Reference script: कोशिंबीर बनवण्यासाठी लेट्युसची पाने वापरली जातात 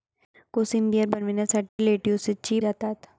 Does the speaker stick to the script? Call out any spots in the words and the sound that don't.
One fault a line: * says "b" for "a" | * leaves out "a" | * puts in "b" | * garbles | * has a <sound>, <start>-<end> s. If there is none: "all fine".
* has a dropout, 1.7-1.8 s
* leaves out "पाने वापरली"